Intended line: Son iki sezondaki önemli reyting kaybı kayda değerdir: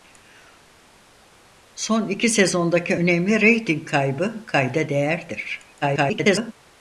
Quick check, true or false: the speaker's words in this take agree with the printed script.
false